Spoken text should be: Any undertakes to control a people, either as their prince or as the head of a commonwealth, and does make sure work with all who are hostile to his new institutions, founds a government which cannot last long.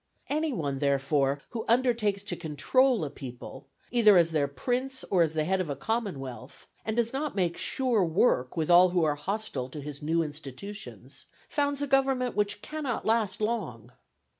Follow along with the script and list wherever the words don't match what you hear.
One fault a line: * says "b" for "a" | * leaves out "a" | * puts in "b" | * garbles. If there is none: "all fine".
* puts in "one therefore who"
* puts in "not"